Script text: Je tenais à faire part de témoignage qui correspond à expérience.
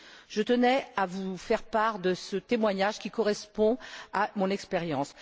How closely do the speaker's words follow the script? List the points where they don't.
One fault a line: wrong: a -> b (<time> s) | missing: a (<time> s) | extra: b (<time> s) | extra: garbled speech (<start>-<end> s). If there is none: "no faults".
extra: vous (1.1 s)
extra: ce (2.1 s)
extra: mon (4.4 s)